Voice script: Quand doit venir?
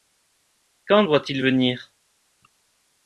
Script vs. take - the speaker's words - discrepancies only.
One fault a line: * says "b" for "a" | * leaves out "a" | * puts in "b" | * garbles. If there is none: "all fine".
* puts in "il"